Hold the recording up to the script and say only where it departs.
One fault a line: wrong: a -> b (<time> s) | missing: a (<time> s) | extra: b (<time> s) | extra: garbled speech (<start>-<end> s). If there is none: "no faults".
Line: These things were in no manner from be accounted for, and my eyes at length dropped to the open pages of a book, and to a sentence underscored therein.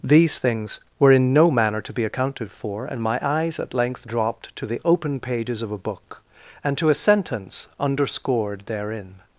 wrong: from -> to (1.8 s)